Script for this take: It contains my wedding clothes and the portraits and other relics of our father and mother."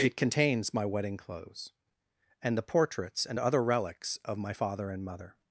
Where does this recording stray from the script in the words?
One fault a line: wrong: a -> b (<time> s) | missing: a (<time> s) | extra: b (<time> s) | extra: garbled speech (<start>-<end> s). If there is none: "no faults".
wrong: our -> my (4.4 s)